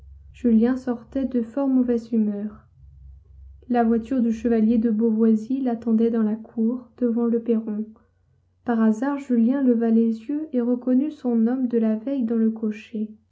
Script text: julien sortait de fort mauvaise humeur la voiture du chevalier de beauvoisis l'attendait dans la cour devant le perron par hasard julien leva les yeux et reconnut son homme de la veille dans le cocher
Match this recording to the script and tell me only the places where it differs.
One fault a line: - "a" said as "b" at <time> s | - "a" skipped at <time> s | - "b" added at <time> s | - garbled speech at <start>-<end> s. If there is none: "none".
none